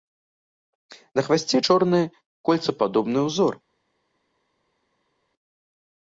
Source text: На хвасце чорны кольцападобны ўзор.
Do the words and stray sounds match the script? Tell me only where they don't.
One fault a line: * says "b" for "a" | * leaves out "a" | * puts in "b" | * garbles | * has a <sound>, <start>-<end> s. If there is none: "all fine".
all fine